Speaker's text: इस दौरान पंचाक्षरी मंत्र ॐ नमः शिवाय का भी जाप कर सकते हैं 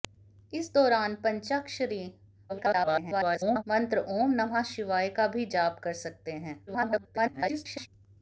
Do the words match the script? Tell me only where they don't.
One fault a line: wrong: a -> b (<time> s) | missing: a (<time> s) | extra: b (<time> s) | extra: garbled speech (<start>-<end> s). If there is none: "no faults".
extra: garbled speech (2.5-3.6 s)
extra: garbled speech (6.7-7.9 s)